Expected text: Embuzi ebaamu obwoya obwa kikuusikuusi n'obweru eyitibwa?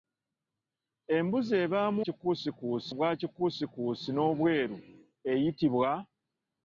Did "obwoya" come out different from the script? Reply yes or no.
yes